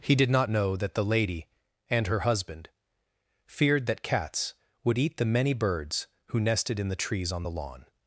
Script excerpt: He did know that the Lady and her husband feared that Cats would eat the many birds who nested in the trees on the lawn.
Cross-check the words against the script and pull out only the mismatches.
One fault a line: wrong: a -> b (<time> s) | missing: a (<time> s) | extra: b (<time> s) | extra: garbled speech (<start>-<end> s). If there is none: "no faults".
extra: not (0.3 s)